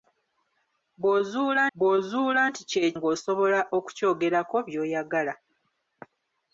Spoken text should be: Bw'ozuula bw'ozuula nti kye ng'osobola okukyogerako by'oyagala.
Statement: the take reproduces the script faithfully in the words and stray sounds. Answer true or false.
true